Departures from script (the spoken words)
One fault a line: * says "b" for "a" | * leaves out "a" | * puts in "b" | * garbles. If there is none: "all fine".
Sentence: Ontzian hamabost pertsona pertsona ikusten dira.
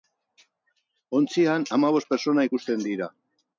* leaves out "pertsona"